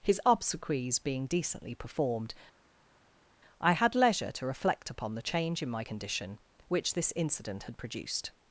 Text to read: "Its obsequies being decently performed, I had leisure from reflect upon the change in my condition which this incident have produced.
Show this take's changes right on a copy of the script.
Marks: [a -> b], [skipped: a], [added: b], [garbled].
["Its -> His] obsequies being decently performed, I had leisure [from -> to] reflect upon the change in my condition which this incident [have -> had] produced.